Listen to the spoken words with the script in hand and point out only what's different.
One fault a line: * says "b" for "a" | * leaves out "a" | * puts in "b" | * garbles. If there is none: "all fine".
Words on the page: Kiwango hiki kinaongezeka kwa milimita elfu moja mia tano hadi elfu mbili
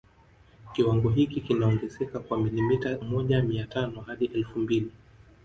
* leaves out "elfu"